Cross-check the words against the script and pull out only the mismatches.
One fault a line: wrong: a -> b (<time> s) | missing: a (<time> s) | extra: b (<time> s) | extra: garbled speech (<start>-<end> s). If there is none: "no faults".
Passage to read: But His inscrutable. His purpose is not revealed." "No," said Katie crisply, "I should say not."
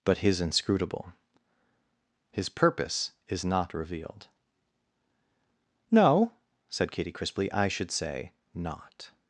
no faults